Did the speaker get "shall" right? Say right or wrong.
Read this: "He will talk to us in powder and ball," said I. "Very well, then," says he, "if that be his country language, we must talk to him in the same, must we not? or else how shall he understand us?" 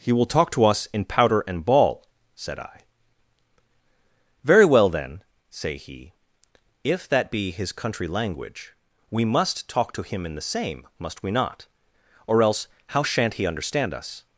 wrong